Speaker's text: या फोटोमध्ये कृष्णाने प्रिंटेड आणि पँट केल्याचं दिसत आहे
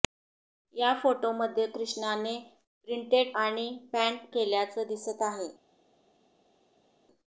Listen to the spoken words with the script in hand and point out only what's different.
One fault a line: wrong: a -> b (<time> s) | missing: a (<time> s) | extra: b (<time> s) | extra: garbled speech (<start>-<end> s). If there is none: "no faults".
no faults